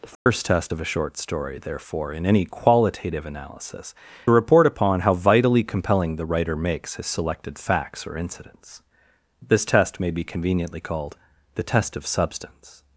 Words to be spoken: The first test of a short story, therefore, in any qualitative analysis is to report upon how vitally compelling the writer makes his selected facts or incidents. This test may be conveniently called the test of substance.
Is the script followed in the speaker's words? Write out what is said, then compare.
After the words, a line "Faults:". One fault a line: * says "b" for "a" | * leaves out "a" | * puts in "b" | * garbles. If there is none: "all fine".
The first test of a short story, therefore, in any qualitative analysis report upon how vitally compelling the writer makes his selected facts or incidents. This test may be conveniently called the test of substance.
Faults:
* leaves out "is to"